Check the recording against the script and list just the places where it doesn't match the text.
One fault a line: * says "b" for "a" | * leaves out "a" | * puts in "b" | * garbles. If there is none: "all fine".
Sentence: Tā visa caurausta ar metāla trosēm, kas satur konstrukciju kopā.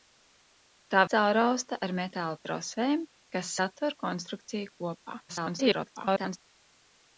* leaves out "visa"
* garbles